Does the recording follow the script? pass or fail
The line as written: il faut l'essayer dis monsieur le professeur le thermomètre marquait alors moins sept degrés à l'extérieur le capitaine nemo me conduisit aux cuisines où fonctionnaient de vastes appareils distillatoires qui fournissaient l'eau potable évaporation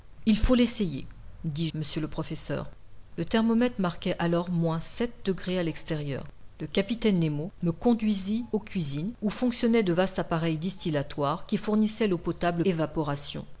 pass